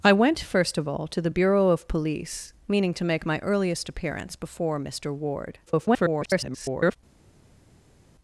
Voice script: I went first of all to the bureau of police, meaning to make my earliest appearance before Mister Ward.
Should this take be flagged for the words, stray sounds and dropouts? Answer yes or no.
yes